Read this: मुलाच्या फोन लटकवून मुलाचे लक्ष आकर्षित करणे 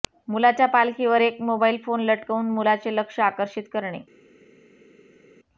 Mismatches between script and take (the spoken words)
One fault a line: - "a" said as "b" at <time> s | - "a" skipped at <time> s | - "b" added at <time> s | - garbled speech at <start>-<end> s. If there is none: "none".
- "पालखीवर एक मोबाईल" added at 0.7 s